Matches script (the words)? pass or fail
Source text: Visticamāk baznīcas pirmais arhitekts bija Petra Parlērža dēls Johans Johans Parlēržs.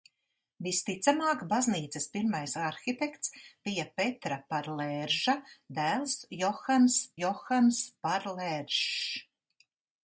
pass